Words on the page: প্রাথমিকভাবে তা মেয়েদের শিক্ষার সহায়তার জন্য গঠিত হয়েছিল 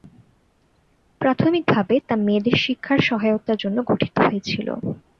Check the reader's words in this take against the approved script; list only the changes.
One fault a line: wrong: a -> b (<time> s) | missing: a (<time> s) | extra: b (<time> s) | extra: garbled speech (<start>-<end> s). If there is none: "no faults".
no faults